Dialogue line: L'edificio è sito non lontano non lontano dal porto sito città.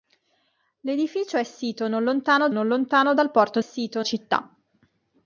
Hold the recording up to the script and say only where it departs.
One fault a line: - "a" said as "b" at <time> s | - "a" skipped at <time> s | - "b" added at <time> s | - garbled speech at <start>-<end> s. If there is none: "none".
none